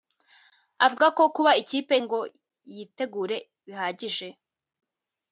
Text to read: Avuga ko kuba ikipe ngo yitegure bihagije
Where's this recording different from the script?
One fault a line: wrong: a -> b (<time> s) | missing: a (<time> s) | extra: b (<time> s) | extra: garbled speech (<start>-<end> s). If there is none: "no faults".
no faults